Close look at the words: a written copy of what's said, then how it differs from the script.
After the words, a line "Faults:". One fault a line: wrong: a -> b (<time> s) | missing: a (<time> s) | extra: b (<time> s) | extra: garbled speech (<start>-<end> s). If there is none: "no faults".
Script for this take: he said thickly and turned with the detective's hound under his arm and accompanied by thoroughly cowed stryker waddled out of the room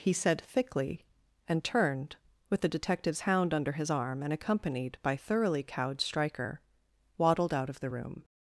he said thickly and turned with the detective's hound under his arm and accompanied by thoroughly cowed stryker waddled out of the room
Faults:
no faults